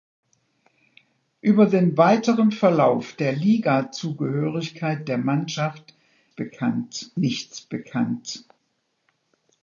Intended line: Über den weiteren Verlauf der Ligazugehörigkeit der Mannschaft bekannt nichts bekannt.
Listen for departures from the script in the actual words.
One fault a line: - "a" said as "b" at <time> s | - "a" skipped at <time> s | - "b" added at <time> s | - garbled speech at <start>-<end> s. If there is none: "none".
none